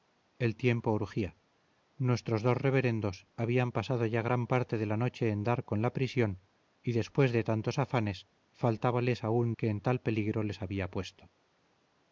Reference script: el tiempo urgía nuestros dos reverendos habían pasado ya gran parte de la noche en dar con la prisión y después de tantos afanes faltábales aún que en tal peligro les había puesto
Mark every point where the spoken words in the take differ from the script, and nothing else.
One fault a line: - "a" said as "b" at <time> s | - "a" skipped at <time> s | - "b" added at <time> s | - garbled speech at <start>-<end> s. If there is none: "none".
none